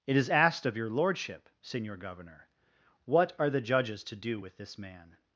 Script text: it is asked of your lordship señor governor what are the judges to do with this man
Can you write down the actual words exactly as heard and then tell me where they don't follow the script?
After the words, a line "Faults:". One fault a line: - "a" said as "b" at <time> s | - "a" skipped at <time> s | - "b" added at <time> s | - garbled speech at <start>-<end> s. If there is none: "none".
it is asked of your lordship señor governor what are the judges to do with this man
Faults:
none